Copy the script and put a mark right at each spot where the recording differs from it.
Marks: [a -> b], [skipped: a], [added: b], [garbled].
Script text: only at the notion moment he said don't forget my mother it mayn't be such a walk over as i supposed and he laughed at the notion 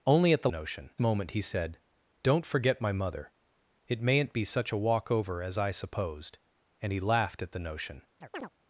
only at the notion moment he said don't forget my mother it mayn't be such a walk over as i supposed and he laughed at the notion